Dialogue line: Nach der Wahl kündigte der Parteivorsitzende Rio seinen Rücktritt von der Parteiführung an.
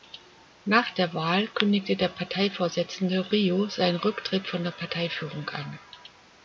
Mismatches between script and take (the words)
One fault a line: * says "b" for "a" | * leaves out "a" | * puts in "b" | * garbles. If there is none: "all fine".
all fine